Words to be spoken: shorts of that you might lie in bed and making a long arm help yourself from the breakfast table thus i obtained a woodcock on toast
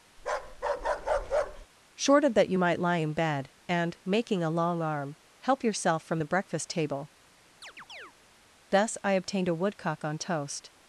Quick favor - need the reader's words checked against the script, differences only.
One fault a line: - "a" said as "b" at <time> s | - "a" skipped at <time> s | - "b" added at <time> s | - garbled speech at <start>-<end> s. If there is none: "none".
- "shorts" said as "short" at 1.9 s